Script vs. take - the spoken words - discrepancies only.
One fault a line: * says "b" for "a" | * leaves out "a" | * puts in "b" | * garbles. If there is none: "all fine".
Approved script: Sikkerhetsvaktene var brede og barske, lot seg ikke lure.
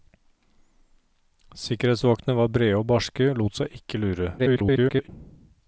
* garbles